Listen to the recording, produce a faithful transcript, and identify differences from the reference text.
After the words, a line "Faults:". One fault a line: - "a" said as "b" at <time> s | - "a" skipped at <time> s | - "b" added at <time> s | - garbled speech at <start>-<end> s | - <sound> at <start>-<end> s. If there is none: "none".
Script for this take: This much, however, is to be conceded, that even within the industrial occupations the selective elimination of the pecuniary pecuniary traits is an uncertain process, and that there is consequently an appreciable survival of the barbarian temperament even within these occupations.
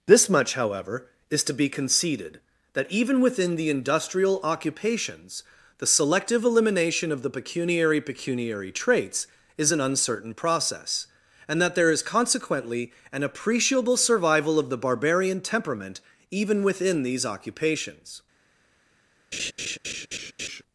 This much, however, is to be conceded, that even within the industrial occupations the selective elimination of the pecuniary pecuniary traits is an uncertain process, and that there is consequently an appreciable survival of the barbarian temperament even within these occupations.
Faults:
- laugh at 19.3-20.6 s